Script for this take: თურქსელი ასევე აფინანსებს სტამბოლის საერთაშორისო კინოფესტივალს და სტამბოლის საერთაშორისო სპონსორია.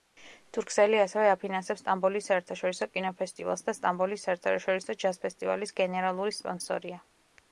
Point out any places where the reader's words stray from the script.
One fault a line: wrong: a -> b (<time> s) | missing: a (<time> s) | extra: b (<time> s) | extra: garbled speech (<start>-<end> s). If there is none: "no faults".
extra: ჯაზ ფესტივალის გენერალური (5.0 s)